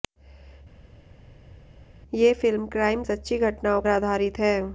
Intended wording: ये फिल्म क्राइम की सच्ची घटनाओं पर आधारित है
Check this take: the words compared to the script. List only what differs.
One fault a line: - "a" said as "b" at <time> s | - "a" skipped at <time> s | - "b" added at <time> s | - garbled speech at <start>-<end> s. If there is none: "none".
- "की" skipped at 3.0 s
- "पर" skipped at 3.8 s